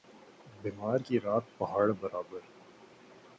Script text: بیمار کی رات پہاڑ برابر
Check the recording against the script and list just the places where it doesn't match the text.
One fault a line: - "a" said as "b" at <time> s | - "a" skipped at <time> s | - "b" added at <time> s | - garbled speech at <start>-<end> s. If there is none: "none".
none